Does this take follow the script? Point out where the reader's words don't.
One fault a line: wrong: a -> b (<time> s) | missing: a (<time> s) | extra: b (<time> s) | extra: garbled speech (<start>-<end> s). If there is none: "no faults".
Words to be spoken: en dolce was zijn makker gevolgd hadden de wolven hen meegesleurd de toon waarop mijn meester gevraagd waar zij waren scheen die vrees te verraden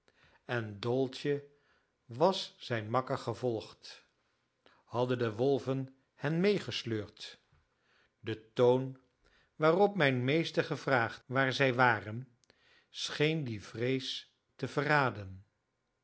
no faults